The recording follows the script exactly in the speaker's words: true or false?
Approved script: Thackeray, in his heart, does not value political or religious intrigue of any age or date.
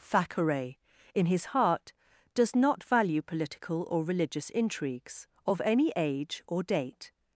false